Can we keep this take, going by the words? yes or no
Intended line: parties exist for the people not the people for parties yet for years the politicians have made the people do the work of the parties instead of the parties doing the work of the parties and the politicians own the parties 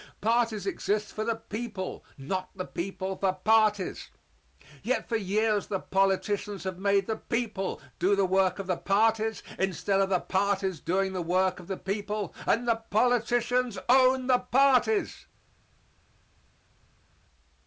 no